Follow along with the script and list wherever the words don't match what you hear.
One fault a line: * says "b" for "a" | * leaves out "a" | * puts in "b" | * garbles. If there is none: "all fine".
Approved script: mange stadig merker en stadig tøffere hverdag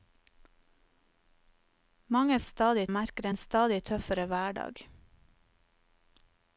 all fine